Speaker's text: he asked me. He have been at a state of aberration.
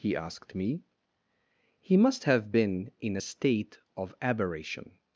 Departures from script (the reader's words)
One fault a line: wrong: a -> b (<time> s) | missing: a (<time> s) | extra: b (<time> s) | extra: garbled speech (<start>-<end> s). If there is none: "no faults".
extra: must (1.9 s)
wrong: at -> in (3.0 s)